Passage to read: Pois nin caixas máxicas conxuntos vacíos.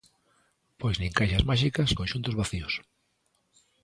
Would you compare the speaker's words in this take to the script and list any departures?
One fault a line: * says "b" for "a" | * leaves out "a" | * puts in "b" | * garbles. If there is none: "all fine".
all fine